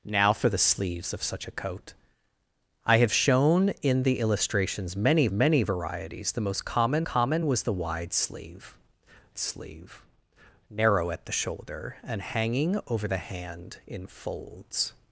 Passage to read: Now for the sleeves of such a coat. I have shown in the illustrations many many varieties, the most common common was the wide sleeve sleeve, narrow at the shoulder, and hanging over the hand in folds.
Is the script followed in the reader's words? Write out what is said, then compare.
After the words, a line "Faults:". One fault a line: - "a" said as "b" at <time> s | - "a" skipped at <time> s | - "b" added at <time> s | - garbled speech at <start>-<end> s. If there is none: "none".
Now for the sleeves of such a coat. I have shown in the illustrations many many varieties, the most common common was the wide sleeve sleeve, narrow at the shoulder, and hanging over the hand in folds.
Faults:
none